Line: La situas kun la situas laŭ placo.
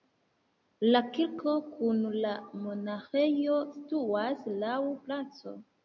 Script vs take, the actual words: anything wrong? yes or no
yes